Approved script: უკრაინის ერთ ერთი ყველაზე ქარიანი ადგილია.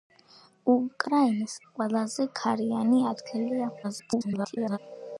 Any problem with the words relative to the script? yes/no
yes